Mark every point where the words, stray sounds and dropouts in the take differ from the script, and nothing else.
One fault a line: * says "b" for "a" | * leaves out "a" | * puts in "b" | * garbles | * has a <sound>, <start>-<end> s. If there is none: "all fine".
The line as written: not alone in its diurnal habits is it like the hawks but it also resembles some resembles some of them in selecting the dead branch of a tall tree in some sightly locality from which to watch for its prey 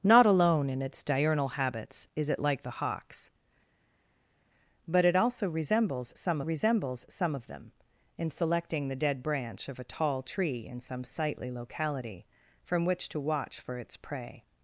all fine